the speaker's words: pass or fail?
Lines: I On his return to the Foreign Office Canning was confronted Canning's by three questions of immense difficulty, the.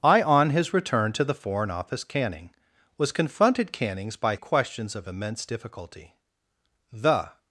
fail